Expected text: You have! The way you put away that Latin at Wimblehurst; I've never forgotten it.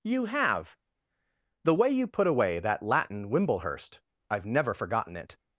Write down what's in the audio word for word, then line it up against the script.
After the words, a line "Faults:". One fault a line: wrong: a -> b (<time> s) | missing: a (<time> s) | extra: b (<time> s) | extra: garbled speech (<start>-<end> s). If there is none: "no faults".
You have! The way you put away that Latin Wimblehurst; I've never forgotten it.
Faults:
missing: at (3.3 s)